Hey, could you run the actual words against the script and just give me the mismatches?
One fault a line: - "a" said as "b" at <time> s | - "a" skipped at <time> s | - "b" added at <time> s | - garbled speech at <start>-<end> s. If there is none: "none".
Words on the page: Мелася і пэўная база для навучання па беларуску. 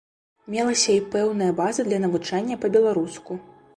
none